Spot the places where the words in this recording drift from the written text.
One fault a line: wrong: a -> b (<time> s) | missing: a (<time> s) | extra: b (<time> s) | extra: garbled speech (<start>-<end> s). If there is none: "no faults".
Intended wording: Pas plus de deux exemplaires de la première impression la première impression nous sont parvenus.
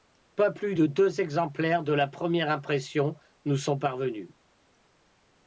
missing: la première impression (3.2 s)